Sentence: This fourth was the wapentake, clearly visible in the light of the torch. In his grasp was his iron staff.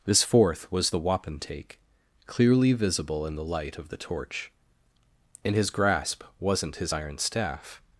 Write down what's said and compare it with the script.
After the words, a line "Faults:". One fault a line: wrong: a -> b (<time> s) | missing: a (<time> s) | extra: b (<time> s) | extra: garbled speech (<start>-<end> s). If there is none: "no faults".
This fourth was the wapentake, clearly visible in the light of the torch. In his grasp wasn't his iron staff.
Faults:
wrong: was -> wasn't (6.4 s)